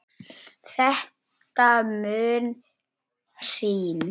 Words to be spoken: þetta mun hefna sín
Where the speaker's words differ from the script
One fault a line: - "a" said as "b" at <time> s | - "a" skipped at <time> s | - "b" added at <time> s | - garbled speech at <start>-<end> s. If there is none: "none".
- "hefna" skipped at 2.5 s